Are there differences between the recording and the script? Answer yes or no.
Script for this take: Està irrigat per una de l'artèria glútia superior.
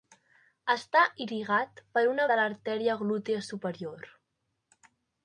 no